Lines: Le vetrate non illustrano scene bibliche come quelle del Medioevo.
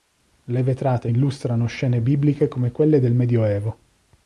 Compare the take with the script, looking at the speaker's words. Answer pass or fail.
fail